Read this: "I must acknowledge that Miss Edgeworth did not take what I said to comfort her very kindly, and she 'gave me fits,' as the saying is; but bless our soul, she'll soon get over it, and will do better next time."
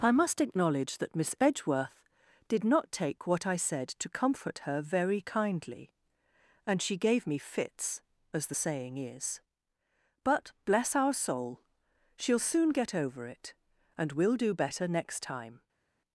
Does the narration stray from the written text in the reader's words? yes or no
no